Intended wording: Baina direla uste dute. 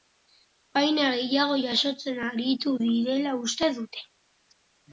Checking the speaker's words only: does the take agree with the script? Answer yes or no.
no